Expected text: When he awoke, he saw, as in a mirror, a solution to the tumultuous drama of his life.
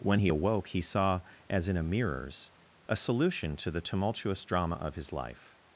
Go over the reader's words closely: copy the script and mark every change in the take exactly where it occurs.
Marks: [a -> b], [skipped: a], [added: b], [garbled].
When he awoke, he saw, as in a [mirror, -> mirrors] a solution to the tumultuous drama of his life.